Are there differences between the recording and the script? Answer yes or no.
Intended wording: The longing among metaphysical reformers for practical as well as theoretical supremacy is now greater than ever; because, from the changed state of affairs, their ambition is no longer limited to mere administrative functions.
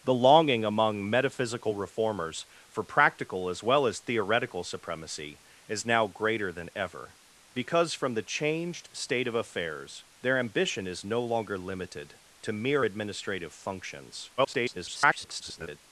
yes